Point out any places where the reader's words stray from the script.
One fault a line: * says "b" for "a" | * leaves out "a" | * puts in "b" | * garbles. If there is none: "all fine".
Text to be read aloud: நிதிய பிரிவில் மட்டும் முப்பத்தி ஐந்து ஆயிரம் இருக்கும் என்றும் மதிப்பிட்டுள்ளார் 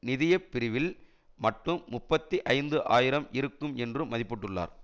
all fine